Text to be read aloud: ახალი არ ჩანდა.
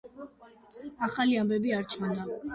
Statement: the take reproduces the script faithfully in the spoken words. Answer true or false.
false